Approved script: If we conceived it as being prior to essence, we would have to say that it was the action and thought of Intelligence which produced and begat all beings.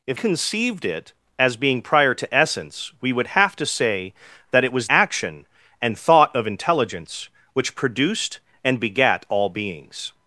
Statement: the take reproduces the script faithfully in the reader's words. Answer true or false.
false